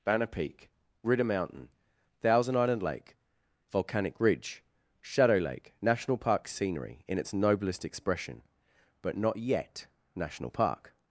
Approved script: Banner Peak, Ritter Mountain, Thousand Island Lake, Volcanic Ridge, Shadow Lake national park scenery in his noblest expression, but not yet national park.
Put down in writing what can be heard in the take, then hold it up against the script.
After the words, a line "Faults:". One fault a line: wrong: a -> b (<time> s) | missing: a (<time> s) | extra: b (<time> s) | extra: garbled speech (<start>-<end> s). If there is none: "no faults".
Banner Peak, Ritter Mountain, Thousand Island Lake, Volcanic Ridge, Shadow Lake national park scenery in its noblest expression, but not yet national park.
Faults:
wrong: his -> its (7.2 s)